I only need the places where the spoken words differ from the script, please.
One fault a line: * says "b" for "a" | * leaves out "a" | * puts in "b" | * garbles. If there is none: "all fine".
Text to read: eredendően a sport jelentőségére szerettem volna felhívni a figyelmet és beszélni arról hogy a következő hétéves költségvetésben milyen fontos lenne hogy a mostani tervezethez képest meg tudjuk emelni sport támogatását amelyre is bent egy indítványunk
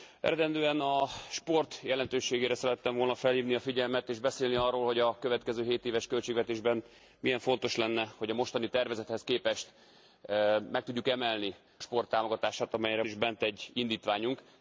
all fine